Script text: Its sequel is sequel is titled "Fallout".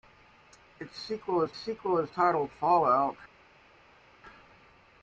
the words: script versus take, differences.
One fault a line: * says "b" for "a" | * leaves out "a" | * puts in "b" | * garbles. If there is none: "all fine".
all fine